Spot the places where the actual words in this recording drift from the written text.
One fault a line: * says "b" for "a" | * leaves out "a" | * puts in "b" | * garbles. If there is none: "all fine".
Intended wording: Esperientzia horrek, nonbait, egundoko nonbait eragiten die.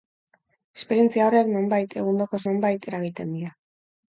all fine